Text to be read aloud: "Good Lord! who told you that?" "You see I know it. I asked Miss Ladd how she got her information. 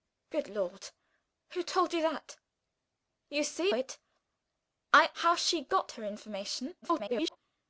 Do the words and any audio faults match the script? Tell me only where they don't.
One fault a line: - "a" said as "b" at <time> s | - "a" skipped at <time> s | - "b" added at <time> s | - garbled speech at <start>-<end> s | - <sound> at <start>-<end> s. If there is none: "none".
- "I know" skipped at 3.7 s
- "asked Miss Ladd" skipped at 5.1 s
- garbled speech at 6.8-7.4 s